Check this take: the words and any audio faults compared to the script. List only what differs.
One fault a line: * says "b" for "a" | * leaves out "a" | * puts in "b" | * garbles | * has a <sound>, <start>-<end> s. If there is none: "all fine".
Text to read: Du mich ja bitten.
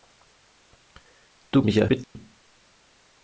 * has a dropout, 2.0-2.2 s